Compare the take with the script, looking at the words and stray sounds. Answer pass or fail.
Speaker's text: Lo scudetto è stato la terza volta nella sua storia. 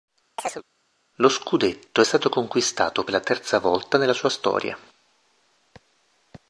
fail